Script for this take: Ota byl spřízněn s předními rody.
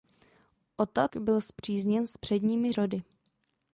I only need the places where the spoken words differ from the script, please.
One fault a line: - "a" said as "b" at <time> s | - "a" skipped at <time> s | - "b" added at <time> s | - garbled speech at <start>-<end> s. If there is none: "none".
none